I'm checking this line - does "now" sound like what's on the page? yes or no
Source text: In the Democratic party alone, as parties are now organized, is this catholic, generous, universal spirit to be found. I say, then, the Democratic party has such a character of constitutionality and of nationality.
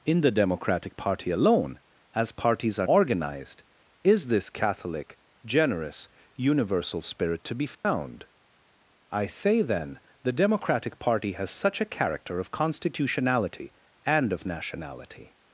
no